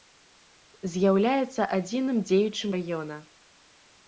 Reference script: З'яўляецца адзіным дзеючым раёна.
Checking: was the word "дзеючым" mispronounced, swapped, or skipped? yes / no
no